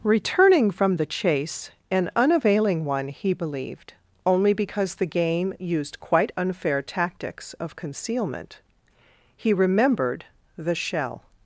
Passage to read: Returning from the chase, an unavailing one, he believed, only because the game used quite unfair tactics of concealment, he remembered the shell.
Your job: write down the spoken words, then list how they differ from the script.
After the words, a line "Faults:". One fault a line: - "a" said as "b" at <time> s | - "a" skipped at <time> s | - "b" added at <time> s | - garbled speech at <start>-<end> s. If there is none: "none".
Returning from the chase, an unavailing one, he believed, only because the game used quite unfair tactics of concealment, he remembered the shell.
Faults:
none